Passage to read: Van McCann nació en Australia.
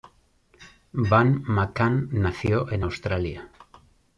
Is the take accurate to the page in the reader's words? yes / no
yes